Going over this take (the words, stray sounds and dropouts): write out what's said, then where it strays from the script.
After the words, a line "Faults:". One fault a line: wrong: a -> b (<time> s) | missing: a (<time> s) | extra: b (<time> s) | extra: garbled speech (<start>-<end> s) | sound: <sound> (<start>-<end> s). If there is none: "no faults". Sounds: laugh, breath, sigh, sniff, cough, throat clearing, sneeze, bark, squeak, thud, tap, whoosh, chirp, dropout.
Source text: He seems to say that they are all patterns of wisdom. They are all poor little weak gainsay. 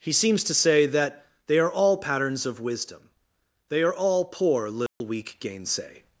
He seems to say that they are all patterns of wisdom. They are all poor little weak gainsay.
Faults:
sound: dropout (4.9-5.0 s)